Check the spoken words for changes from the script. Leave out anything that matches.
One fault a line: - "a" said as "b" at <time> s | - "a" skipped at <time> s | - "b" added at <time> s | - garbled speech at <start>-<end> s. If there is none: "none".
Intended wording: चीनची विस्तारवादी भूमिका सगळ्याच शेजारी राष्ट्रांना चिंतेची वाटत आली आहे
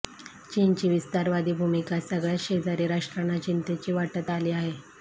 none